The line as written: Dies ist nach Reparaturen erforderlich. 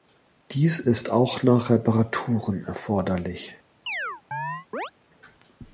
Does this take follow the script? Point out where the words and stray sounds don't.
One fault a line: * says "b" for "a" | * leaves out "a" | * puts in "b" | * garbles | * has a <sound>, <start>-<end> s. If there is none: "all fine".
* puts in "auch"
* has a chirp, 3.9-4.9 s